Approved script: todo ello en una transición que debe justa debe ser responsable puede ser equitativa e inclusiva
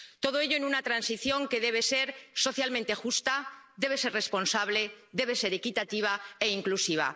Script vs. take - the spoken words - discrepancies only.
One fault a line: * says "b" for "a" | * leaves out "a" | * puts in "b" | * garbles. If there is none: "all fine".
* puts in "ser socialmente"
* says "debe" for "puede"